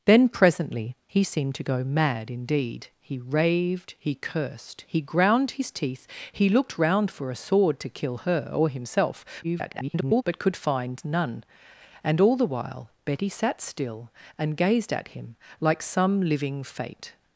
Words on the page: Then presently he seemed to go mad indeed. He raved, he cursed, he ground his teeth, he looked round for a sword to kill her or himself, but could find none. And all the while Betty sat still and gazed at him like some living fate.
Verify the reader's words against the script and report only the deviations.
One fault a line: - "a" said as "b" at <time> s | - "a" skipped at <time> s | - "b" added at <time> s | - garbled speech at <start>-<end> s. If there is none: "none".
- garbled speech at 9.4-10.2 s